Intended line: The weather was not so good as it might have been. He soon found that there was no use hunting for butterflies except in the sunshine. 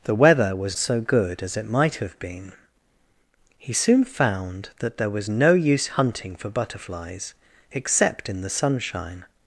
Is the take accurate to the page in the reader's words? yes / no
no